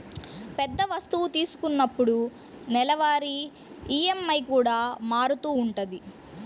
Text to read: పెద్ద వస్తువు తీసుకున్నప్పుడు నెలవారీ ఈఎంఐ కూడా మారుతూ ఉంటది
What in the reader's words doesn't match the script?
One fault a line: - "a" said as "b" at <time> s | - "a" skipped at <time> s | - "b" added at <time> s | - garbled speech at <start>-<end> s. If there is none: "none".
none